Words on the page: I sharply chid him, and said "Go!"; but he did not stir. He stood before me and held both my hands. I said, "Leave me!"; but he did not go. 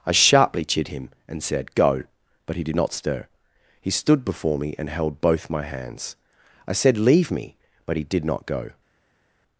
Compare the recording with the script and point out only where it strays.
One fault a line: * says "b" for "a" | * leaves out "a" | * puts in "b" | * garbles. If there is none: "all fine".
all fine